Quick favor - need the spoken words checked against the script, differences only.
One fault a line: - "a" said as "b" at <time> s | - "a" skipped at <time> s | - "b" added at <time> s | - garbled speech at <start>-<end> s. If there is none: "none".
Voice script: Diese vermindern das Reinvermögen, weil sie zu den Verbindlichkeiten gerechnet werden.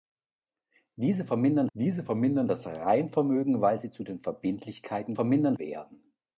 - "diese vermindern" added at 1.7 s
- "gerechnet" said as "vermindern" at 5.1 s